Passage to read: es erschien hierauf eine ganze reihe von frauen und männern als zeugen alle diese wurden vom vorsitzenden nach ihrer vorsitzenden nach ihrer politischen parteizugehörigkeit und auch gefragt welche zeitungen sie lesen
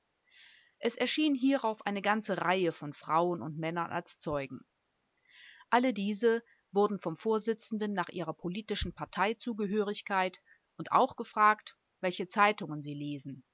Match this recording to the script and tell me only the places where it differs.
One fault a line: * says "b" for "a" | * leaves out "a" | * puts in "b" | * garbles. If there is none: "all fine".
* leaves out "vorsitzenden nach ihrer"